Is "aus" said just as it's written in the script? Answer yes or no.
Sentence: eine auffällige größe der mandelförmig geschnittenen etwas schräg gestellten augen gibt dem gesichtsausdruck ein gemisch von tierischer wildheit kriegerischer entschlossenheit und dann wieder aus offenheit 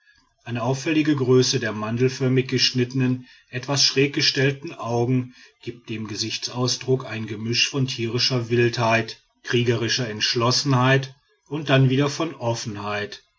no